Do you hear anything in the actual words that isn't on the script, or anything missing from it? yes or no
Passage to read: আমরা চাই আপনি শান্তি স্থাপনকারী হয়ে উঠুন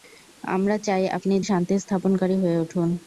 no